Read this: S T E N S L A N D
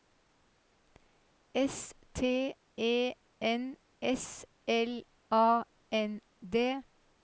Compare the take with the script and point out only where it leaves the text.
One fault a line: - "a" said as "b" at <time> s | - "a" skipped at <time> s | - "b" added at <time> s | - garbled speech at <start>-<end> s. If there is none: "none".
none